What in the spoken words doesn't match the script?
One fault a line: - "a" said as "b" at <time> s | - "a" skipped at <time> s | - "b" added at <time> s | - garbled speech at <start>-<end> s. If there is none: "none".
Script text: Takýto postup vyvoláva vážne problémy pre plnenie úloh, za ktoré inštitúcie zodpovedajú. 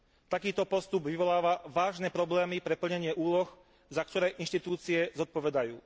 none